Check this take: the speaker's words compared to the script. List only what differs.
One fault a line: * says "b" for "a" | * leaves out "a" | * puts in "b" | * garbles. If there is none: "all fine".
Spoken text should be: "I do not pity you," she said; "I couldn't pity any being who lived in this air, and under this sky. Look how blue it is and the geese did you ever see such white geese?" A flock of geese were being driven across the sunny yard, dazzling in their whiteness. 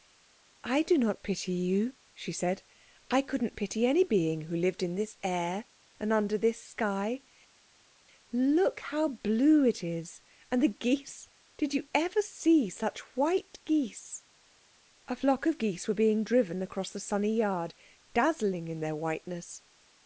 all fine